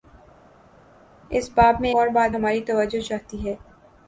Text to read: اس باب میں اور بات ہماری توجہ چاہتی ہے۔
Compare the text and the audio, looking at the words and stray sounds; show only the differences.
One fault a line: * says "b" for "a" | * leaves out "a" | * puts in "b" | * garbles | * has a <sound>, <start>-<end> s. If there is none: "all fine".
all fine